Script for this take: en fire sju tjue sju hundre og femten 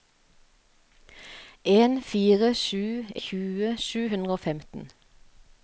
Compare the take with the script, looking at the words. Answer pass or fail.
pass